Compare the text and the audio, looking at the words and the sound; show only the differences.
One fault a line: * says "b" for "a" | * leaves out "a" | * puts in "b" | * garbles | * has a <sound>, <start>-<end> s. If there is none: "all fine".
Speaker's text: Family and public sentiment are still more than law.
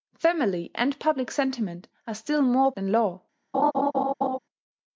* has a laugh, 3.5-4.4 s